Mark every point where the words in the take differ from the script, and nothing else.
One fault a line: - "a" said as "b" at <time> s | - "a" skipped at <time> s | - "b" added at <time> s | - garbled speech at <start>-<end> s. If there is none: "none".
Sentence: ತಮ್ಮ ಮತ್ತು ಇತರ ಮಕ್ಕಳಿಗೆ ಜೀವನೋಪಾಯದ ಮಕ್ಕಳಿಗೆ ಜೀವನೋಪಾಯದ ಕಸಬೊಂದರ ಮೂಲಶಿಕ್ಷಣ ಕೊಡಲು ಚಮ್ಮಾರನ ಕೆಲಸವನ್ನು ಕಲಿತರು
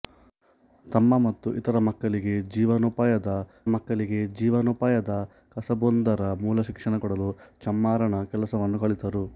none